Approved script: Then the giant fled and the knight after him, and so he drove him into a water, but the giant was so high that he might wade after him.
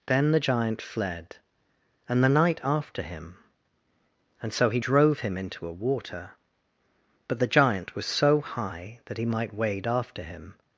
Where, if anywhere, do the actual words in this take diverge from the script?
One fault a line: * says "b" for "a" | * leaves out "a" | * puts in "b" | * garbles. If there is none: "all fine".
all fine